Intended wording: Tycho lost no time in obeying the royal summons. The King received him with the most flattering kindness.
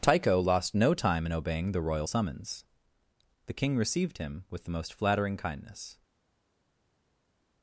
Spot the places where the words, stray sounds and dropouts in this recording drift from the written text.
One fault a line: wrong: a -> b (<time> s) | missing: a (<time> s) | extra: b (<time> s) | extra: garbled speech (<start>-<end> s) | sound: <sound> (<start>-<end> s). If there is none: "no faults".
no faults